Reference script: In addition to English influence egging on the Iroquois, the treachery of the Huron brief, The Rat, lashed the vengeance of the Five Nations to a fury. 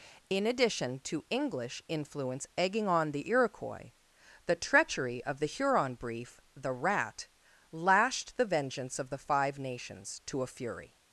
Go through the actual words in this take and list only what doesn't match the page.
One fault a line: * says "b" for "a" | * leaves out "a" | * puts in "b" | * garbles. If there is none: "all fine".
all fine